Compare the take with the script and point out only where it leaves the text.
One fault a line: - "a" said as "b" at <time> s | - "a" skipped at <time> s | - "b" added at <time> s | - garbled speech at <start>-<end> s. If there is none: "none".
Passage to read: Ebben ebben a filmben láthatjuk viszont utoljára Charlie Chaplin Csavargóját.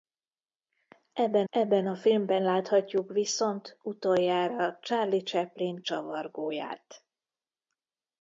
none